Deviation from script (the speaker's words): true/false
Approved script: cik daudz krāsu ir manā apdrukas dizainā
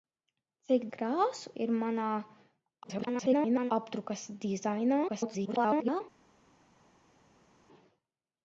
true